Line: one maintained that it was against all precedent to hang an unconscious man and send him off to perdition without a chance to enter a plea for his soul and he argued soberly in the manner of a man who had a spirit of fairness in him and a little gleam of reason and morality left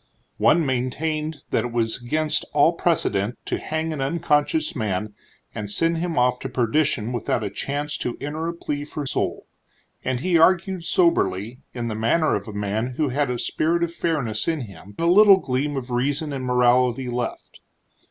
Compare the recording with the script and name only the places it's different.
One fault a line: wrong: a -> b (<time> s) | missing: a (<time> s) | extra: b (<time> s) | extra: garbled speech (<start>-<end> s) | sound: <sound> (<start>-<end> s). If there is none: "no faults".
missing: his (9.1 s)
missing: and (15.0 s)